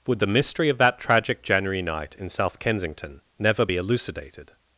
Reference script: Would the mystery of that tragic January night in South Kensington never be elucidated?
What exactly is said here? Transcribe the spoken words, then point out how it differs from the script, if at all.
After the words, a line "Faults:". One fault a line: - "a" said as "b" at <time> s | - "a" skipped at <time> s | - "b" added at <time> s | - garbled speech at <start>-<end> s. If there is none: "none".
Would the mystery of that tragic January night in South Kensington never be elucidated?
Faults:
none